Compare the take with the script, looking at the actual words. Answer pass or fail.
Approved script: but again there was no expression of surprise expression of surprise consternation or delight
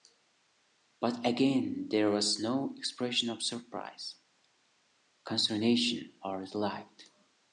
fail